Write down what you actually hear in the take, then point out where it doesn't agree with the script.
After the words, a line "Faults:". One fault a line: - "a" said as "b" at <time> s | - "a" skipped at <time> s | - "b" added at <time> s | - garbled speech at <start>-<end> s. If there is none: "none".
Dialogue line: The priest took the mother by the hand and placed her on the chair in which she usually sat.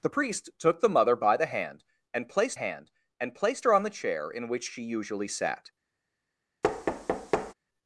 The priest took the mother by the hand and placed hand and placed her on the chair in which she usually sat.
Faults:
- "hand and placed" added at 2.5 s